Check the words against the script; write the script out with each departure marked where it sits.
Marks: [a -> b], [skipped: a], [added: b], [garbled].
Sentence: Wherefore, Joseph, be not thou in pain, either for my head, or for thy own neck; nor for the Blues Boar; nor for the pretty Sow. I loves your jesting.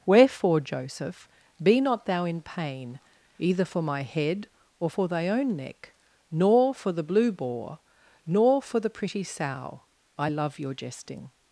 Wherefore, Joseph, be not thou in pain, either for my head, or for thy own neck; nor for the [Blues -> Blue] Boar; nor for the pretty Sow. I [loves -> love] your jesting.